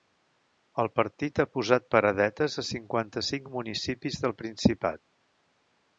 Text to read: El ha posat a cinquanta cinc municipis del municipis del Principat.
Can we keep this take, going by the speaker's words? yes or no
no